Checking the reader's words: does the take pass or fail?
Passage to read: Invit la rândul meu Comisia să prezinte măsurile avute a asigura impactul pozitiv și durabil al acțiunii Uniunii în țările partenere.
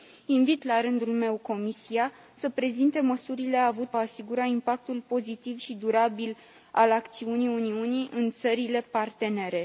pass